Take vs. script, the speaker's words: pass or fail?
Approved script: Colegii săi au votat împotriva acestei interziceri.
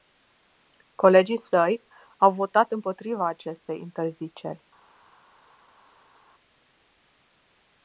pass